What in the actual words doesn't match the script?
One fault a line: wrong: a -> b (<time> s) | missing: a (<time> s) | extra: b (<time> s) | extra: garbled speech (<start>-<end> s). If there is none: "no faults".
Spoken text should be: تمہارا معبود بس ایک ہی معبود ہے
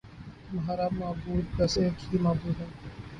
no faults